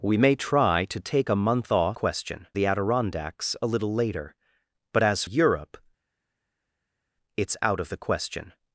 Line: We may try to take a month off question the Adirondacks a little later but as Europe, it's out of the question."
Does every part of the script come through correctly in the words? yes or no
yes